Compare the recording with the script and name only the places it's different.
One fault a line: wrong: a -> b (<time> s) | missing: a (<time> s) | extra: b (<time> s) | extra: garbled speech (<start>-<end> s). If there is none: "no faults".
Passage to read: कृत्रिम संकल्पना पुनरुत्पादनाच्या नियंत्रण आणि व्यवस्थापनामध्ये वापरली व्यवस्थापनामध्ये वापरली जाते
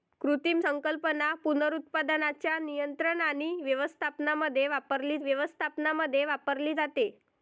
no faults